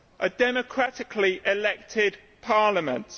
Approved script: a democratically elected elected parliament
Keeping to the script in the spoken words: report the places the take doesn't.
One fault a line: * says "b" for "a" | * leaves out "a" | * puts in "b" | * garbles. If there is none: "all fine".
* leaves out "elected"